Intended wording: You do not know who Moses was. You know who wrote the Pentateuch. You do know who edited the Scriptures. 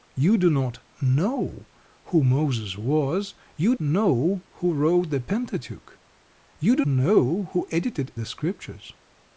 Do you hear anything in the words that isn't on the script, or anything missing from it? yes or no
no